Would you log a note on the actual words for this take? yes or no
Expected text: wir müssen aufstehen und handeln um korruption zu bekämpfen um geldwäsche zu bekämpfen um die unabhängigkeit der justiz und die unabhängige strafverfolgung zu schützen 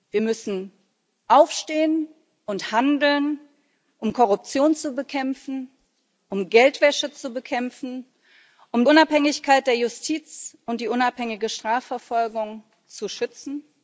yes